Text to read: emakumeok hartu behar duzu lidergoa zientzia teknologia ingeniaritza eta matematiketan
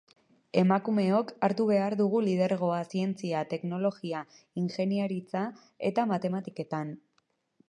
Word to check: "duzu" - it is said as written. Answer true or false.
false